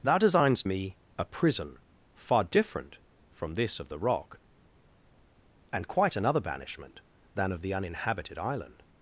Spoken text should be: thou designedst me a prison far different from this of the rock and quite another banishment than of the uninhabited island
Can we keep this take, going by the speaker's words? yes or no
yes